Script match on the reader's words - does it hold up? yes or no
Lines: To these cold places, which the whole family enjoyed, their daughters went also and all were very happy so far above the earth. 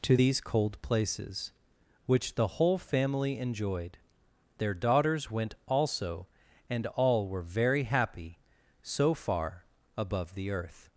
yes